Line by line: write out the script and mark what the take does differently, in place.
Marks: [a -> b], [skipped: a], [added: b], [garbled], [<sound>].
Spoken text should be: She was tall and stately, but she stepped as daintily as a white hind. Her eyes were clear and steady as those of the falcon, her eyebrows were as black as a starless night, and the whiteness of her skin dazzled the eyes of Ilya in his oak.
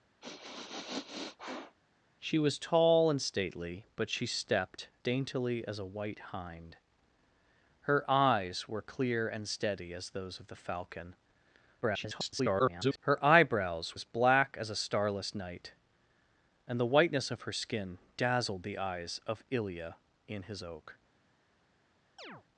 [sniff] She was tall and stately, but she stepped [skipped: as] daintily as a white hind. Her eyes were clear and steady as those of the falcon, [garbled] her eyebrows [skipped: were] as black as a starless night, and the whiteness of her skin dazzled the eyes of Ilya in his oak. [chirp]